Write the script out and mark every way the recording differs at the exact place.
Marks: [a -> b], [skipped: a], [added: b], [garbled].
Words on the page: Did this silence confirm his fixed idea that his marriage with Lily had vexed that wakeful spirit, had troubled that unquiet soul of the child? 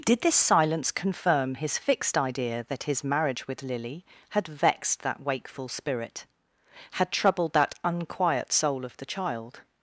Did this silence confirm his fixed idea that his marriage with Lily had vexed that wakeful spirit, had troubled that unquiet soul of the child?